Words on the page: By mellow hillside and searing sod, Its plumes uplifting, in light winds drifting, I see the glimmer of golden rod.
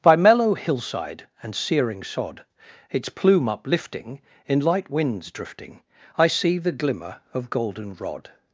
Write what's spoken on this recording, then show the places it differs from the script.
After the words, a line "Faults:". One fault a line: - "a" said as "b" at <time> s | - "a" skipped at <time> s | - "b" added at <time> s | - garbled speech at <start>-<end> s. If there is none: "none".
By mellow hillside and searing sod, Its plume uplifting, in light winds drifting, I see the glimmer of golden rod.
Faults:
- "plumes" said as "plume" at 3.1 s